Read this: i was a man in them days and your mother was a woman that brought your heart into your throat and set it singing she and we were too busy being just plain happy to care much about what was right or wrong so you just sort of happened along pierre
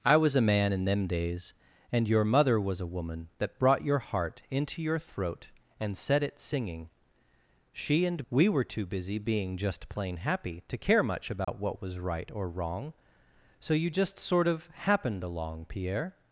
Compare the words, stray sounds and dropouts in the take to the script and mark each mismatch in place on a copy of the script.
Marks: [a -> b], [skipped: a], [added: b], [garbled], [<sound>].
i was a man in them days and your mother was a woman that brought your heart into your throat and set it singing she and we were too busy being just plain happy to care much about [dropout] what was right or wrong so you just sort of happened along pierre